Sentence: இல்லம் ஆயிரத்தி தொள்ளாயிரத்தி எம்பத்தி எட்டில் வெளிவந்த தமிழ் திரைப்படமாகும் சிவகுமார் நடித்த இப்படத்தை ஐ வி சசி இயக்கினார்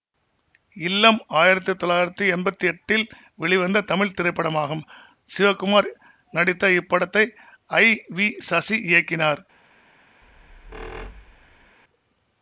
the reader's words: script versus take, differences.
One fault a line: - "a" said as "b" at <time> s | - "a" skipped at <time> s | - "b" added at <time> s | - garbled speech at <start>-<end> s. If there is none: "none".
none